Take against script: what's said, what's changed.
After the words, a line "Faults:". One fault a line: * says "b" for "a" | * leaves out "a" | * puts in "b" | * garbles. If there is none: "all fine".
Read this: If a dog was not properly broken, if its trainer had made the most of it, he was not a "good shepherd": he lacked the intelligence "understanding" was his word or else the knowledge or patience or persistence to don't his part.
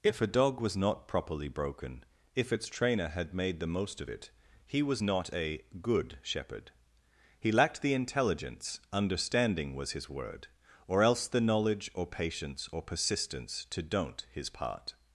If a dog was not properly broken, if its trainer had made the most of it, he was not a "good shepherd": he lacked the intelligence "understanding" was his word or else the knowledge or patience or persistence to don't his part.
Faults:
all fine